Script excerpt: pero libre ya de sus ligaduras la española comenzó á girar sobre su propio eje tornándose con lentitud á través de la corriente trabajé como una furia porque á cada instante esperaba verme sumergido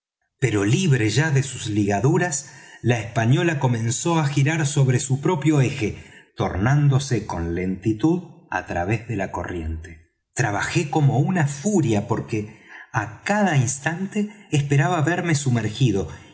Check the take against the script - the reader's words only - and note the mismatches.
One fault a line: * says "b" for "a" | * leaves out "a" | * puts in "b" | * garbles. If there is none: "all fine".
all fine